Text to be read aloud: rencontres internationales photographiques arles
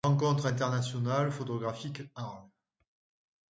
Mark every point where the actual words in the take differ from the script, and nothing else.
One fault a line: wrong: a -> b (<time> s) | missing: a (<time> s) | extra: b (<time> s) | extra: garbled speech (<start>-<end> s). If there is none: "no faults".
no faults